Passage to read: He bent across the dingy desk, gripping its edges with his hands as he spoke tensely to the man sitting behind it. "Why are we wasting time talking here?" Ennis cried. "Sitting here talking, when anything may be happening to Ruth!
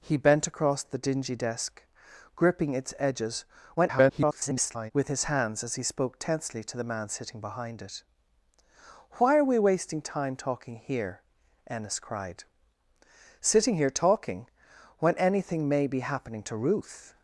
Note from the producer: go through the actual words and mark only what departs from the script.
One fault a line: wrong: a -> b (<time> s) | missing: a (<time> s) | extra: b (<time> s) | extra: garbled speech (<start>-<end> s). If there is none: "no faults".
extra: garbled speech (3.8-4.9 s)